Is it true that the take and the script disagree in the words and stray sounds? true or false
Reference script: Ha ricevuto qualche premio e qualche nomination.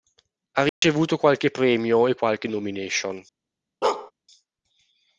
true